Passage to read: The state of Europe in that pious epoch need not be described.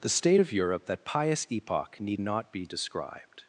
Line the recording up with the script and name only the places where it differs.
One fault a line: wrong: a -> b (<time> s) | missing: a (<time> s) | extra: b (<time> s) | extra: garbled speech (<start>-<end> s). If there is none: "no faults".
missing: in (0.8 s)